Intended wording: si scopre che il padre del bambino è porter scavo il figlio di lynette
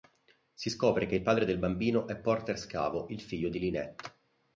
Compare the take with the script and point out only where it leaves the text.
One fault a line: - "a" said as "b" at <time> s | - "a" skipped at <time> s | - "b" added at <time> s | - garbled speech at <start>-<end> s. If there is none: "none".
none